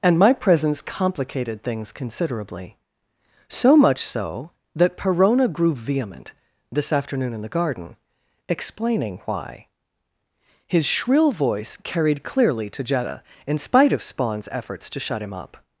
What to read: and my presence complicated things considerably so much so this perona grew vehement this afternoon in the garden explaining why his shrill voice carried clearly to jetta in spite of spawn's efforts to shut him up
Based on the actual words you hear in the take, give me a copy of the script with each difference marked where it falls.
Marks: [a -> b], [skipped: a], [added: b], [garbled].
and my presence complicated things considerably so much so [this -> that] perona grew vehement this afternoon in the garden explaining why his shrill voice carried clearly to jetta in spite of spawn's efforts to shut him up